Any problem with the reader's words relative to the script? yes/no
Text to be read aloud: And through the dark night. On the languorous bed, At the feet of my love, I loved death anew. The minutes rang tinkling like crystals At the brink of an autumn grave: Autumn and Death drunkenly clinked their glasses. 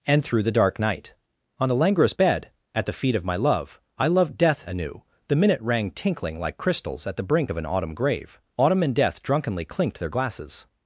yes